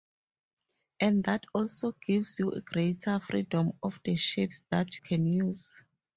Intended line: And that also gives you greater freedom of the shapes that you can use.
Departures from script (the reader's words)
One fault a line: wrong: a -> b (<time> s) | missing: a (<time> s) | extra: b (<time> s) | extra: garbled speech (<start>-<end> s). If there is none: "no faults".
missing: you (5.0 s)